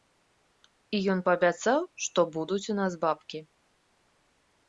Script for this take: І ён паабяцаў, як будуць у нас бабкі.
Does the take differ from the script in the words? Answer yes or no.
yes